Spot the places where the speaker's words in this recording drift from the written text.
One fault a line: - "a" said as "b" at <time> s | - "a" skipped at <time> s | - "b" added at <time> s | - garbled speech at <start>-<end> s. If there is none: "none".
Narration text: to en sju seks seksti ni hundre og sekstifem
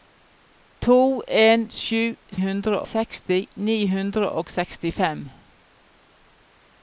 - "seks" said as "hundre" at 2.4 s